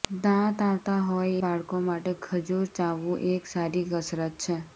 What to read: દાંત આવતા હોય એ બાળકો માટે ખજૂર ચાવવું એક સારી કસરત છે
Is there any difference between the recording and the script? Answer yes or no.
yes